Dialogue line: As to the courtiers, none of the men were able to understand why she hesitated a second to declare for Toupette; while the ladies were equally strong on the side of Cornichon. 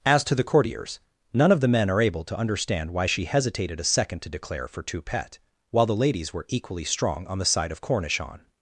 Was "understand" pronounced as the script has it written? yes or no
yes